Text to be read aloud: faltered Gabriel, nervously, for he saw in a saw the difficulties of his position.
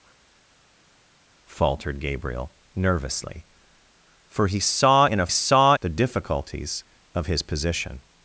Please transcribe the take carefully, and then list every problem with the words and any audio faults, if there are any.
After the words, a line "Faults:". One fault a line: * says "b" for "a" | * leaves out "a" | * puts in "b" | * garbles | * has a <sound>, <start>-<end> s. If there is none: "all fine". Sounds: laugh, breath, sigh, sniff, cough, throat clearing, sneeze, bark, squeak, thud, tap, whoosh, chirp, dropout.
faltered Gabriel, nervously, for he saw in a saw the difficulties of his position.
Faults:
all fine